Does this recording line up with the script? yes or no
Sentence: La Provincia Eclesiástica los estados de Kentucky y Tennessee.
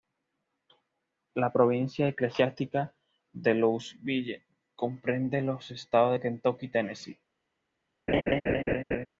no